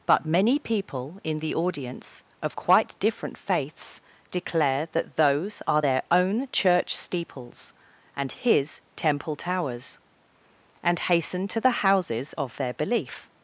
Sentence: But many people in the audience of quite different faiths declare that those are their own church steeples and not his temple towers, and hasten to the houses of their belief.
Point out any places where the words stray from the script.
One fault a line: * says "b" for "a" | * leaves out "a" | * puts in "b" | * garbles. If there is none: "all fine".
* leaves out "not"